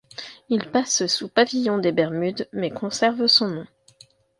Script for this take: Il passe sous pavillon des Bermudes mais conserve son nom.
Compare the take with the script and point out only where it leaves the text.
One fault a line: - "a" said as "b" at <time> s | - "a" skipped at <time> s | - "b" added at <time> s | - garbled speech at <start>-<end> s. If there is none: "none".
none